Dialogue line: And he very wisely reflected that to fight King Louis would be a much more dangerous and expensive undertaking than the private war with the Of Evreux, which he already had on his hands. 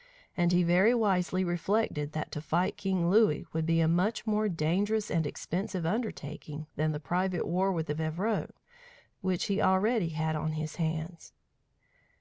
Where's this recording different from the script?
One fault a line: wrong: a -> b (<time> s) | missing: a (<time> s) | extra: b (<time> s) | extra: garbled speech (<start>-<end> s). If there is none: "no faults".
no faults